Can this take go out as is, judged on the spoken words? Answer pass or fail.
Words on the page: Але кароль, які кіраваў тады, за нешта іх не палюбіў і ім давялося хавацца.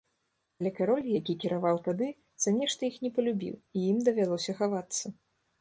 pass